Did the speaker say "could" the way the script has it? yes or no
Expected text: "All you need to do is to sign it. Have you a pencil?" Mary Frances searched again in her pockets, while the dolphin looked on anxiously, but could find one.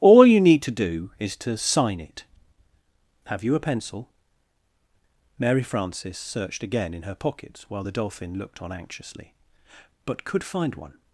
yes